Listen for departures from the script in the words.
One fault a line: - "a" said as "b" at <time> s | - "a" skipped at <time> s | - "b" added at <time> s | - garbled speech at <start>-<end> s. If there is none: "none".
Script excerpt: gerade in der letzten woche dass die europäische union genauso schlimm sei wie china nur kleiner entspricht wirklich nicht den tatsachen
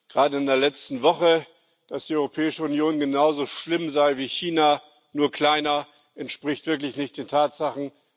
none